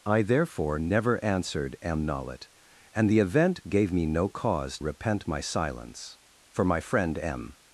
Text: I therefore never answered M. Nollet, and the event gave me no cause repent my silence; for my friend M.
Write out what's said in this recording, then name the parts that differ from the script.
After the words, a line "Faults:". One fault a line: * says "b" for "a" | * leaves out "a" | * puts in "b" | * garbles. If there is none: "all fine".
I therefore never answered M. Nollet, and the event gave me no cause repent my silence; for my friend M.
Faults:
all fine